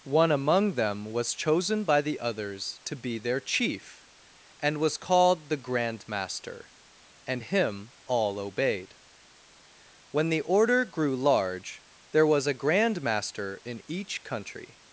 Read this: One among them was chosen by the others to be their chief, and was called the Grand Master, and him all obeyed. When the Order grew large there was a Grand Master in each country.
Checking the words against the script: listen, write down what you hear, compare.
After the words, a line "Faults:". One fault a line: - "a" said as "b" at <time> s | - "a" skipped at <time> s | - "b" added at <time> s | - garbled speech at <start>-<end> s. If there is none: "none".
One among them was chosen by the others to be their chief, and was called the Grand Master, and him all obeyed. When the Order grew large there was a Grand Master in each country.
Faults:
none